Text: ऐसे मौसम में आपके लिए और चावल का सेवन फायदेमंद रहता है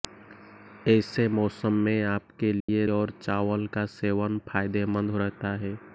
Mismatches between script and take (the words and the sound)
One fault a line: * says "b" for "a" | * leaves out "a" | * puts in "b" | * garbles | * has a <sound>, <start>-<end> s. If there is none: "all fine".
* has a dropout, 2.6-2.7 s